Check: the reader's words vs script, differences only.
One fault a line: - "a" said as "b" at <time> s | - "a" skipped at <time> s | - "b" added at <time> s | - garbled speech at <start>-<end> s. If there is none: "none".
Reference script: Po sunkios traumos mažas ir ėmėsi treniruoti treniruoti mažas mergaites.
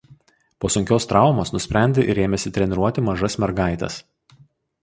- "mažas" said as "nusprendė" at 1.6 s
- "treniruoti" skipped at 3.1 s